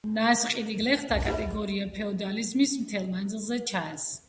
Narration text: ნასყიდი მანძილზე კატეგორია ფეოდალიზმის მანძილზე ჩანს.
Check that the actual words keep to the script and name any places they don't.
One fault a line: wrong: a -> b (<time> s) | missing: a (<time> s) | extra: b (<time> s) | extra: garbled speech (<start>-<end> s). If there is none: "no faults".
wrong: მანძილზე -> გლეხთა (0.8 s)
extra: მთელ (2.8 s)